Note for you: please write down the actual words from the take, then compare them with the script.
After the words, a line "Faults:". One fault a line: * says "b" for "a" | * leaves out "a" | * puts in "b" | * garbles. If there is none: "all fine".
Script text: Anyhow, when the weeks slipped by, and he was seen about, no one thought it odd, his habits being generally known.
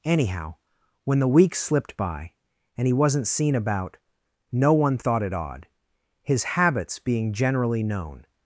Anyhow, when the weeks slipped by, and he wasn't seen about, no one thought it odd, his habits being generally known.
Faults:
* says "wasn't" for "was"